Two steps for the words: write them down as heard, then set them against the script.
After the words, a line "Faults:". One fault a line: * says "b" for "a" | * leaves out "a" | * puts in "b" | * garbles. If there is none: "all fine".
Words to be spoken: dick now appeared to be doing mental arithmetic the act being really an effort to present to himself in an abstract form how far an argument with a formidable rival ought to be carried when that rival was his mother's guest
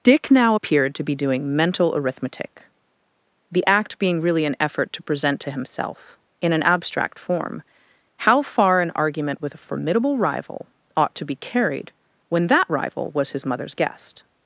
dick now appeared to be doing mental arithmetic the act being really an effort to present to himself in an abstract form how far an argument with a formidable rival ought to be carried when that rival was his mother's guest
Faults:
all fine